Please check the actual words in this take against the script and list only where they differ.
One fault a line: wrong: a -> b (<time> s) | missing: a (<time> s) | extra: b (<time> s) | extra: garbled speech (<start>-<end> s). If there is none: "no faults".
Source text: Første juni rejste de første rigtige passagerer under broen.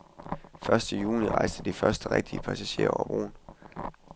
wrong: under -> over (2.9 s)